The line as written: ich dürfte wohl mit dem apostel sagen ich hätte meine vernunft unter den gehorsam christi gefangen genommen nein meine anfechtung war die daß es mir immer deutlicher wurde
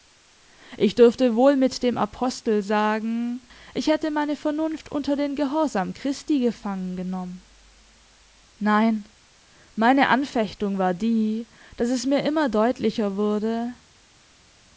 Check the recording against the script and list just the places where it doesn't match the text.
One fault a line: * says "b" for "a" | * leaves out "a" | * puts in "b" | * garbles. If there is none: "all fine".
all fine